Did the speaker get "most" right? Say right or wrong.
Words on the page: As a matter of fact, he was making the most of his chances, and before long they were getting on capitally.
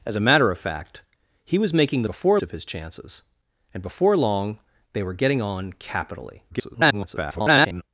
wrong